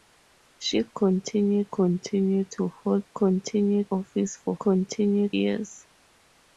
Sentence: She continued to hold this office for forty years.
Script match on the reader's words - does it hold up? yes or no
no